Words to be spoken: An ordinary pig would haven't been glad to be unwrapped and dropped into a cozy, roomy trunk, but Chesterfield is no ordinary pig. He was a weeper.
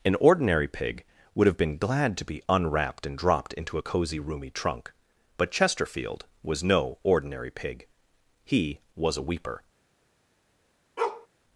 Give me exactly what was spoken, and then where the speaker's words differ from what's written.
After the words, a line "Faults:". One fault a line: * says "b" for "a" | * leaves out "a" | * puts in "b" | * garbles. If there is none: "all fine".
An ordinary pig would have been glad to be unwrapped and dropped into a cozy, roomy trunk, but Chesterfield was no ordinary pig. He was a weeper.
Faults:
* says "have" for "haven't"
* says "was" for "is"